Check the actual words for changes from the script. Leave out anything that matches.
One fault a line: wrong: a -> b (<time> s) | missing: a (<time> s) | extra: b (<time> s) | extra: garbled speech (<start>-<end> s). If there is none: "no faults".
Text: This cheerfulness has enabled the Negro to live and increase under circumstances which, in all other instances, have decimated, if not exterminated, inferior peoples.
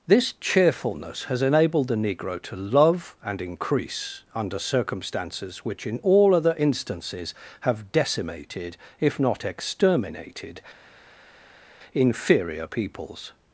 wrong: live -> love (2.5 s)